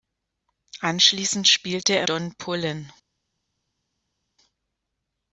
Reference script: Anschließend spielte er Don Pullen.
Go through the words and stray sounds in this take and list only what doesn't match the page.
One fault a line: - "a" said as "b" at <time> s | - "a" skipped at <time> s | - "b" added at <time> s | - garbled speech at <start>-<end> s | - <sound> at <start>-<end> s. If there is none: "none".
none